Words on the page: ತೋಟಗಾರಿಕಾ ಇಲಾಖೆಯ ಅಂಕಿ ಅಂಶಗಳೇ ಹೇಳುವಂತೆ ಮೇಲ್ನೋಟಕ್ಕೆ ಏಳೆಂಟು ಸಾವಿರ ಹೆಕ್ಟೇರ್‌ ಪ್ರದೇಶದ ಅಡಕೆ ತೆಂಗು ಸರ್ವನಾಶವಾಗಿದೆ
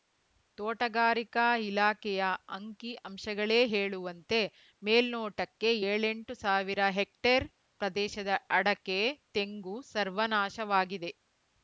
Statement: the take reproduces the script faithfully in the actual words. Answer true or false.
true